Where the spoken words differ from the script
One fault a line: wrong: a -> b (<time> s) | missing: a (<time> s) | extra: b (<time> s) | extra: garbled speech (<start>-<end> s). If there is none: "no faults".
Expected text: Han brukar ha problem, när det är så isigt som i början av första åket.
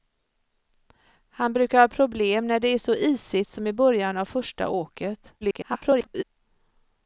extra: garbled speech (5.4-6.2 s)